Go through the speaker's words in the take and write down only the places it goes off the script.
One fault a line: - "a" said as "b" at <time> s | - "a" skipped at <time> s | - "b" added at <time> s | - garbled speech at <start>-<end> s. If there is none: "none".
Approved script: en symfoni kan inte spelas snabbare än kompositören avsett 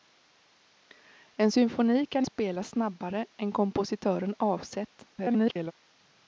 - "inte" skipped at 2.3 s
- garbled speech at 5.1-5.7 s